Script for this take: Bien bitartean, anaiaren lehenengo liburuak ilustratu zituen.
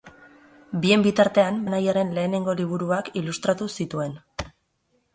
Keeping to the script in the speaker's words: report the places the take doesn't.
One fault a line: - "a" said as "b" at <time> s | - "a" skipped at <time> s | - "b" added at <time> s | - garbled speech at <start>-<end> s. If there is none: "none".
none